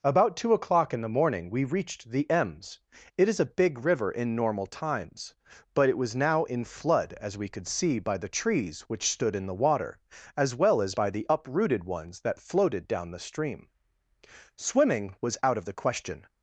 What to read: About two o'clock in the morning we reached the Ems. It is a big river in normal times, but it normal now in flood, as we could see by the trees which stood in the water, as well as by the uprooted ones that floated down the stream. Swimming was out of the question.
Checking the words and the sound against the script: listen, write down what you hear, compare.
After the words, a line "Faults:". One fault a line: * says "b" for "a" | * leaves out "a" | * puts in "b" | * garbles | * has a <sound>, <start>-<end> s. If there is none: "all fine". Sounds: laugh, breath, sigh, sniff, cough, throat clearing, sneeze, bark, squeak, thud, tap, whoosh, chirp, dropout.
About two o'clock in the morning we reached the Ems. It is a big river in normal times, but it was now in flood, as we could see by the trees which stood in the water, as well as by the uprooted ones that floated down the stream. Swimming was out of the question.
Faults:
* says "was" for "normal"